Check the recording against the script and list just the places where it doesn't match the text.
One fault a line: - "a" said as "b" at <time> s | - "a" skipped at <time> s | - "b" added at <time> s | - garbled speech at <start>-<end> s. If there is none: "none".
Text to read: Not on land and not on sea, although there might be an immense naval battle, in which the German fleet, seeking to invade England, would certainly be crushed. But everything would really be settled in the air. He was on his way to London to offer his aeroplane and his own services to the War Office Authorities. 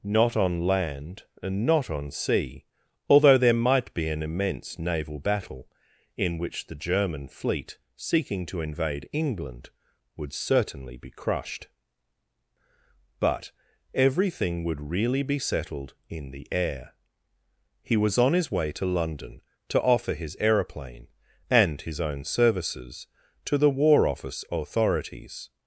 none